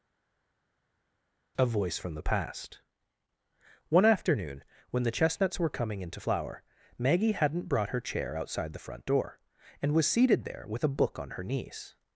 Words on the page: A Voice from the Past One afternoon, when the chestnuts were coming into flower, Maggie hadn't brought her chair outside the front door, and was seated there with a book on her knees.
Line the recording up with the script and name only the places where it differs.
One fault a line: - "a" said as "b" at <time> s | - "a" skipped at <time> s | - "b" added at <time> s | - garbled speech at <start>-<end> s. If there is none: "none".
none